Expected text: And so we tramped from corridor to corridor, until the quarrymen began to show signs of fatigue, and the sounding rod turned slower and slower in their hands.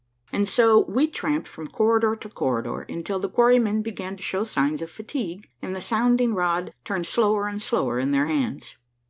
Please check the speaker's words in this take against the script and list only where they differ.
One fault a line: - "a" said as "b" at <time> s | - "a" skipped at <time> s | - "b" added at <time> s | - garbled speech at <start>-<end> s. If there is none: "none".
none